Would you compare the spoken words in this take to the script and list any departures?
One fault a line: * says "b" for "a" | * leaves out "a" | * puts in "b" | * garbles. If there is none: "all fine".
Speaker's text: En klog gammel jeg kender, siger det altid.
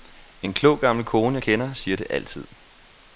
* puts in "kone"